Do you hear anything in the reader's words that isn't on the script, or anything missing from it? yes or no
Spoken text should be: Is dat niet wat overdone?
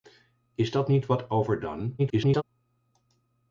yes